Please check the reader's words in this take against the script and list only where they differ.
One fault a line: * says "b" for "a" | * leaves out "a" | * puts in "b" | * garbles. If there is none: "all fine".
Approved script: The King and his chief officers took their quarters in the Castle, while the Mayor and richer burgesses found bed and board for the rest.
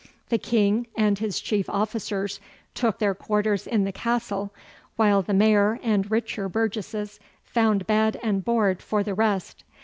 all fine